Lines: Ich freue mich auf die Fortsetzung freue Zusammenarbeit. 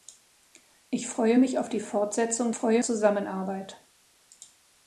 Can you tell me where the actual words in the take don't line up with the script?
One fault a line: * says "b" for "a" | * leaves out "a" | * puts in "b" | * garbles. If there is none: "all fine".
all fine